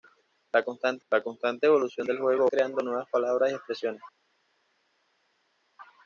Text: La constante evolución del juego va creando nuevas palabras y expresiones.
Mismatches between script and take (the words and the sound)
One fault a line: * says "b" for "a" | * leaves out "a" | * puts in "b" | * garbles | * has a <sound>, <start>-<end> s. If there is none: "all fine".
* puts in "la constante"
* leaves out "va"